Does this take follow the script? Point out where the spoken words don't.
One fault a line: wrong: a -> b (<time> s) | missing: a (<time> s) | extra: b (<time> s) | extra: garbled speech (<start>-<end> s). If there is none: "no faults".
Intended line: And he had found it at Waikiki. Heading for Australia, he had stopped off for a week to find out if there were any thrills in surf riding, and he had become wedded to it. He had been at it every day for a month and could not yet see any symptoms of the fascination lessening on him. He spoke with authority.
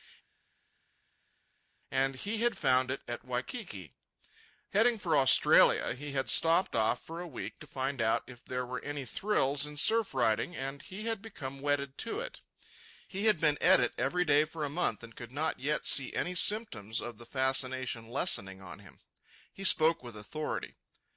no faults